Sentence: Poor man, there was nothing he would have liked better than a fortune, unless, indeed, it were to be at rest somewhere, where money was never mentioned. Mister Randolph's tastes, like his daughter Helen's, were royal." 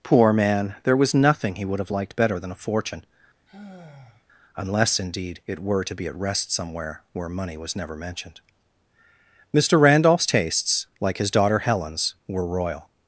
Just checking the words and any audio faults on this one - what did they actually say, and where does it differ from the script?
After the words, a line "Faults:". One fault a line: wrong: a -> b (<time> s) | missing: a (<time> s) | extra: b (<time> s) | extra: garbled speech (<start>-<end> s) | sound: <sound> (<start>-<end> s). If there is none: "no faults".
Poor man, there was nothing he would have liked better than a fortune, unless, indeed, it were to be at rest somewhere, where money was never mentioned. Mister Randolph's tastes, like his daughter Helen's, were royal."
Faults:
sound: sigh (3.5-4.2 s)